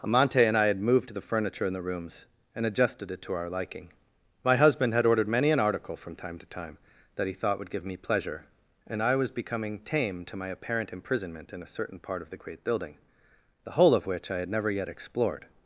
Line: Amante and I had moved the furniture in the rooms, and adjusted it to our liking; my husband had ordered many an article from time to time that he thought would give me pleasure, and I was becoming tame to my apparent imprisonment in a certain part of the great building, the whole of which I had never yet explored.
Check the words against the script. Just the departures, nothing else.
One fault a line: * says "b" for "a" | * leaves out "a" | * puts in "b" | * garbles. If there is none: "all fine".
all fine